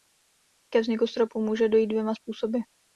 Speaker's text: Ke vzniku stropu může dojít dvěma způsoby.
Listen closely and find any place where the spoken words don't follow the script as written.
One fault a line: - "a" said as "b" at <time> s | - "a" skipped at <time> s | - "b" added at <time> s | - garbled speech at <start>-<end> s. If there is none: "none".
none